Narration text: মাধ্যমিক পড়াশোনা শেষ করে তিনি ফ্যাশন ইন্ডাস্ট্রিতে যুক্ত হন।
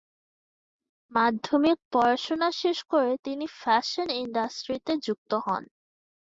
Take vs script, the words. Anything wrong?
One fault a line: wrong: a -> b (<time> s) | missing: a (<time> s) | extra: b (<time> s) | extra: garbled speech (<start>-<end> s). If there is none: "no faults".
no faults